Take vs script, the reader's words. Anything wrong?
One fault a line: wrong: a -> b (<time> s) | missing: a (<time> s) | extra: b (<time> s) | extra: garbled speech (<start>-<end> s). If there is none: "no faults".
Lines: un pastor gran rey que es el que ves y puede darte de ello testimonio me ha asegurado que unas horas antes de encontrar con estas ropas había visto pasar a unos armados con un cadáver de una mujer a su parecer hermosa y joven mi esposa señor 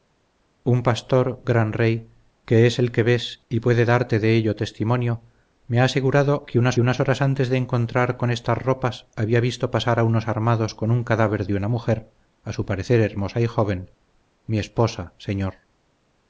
extra: unas (6.8 s)